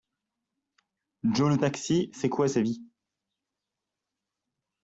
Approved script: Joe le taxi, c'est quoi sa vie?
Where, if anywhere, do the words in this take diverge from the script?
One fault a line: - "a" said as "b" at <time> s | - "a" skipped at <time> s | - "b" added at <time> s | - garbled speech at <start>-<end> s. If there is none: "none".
none